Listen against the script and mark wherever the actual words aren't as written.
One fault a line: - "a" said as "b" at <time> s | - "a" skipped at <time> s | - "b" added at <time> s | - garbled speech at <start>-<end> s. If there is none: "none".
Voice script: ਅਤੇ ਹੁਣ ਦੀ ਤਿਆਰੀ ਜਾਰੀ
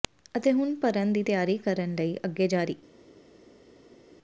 - "ਭਰਨ" added at 0.8 s
- "ਕਰਨ ਲਈ ਅੱਗੇ" added at 1.6 s